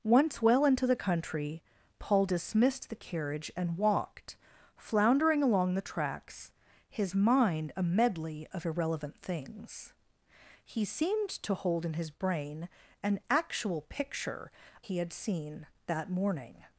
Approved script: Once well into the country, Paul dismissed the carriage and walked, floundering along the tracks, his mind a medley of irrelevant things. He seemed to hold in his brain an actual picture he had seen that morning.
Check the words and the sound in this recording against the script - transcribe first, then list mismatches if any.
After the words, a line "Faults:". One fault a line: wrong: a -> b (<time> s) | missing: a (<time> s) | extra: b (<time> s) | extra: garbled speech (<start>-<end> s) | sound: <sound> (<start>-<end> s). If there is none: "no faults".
Once well into the country, Paul dismissed the carriage and walked, floundering along the tracks, his mind a medley of irrelevant things. He seemed to hold in his brain an actual picture he had seen that morning.
Faults:
no faults